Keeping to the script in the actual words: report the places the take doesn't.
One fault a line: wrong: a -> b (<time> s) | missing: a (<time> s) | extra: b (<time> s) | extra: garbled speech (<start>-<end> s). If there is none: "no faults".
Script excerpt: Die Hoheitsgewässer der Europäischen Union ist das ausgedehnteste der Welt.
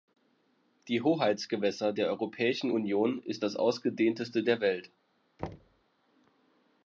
no faults